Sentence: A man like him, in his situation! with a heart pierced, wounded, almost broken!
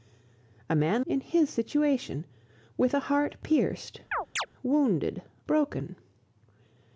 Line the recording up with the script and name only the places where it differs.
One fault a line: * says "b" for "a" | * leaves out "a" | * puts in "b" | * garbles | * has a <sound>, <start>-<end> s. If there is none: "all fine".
* leaves out "like him"
* has a chirp, 4.1-4.5 s
* leaves out "almost"